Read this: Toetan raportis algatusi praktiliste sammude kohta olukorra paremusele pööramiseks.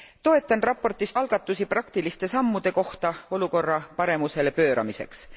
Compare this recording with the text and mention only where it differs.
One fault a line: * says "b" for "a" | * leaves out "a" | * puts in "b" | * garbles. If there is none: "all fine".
all fine